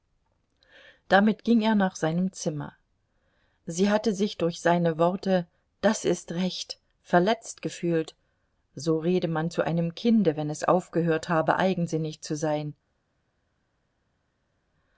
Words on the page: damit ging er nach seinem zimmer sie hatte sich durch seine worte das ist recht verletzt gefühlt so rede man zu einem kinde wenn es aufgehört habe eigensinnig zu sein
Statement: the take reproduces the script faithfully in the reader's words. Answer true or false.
true